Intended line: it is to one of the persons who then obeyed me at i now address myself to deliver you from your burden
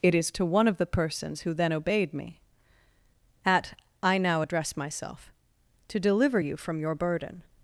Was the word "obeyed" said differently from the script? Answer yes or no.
no